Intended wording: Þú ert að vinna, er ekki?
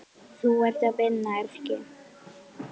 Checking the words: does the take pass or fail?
pass